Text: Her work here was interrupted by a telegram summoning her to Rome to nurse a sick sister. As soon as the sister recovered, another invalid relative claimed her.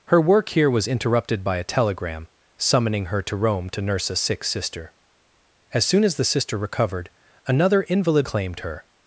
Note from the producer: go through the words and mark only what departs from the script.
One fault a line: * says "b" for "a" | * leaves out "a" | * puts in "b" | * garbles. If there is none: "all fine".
* leaves out "relative"